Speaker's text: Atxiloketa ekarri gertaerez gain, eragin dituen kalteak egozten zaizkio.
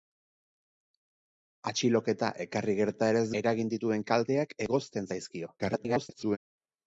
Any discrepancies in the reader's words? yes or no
yes